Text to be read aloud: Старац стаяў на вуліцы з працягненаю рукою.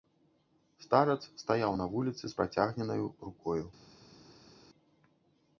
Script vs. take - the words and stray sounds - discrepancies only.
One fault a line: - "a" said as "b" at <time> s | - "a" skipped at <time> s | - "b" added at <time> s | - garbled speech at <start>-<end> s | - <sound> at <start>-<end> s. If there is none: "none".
none